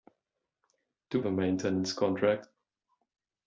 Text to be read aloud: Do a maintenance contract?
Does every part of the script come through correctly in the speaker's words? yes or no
yes